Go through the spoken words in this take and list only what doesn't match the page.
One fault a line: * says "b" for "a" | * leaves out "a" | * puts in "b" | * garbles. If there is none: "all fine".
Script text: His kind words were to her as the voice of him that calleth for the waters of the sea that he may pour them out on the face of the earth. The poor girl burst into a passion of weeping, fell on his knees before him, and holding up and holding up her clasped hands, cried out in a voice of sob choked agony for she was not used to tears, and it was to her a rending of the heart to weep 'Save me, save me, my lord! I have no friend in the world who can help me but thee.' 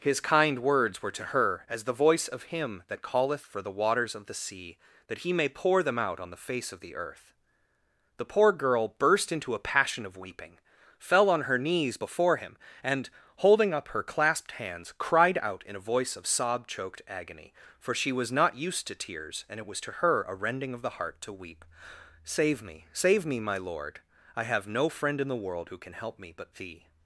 * says "her" for "his"
* leaves out "and holding up"